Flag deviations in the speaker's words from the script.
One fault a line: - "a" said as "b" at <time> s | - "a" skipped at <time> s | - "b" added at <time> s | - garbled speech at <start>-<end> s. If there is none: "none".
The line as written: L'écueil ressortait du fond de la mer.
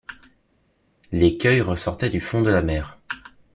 none